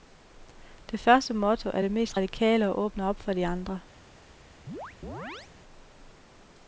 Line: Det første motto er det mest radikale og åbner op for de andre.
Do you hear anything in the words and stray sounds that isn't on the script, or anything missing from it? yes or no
yes